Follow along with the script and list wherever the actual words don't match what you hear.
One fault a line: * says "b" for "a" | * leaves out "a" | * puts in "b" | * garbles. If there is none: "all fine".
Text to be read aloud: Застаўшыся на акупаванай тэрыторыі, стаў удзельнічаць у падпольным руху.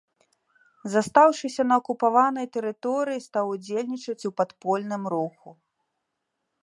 all fine